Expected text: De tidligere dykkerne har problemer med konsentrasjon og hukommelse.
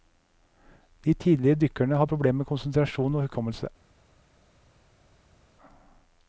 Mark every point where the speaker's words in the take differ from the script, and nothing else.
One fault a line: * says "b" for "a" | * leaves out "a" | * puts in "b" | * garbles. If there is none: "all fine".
all fine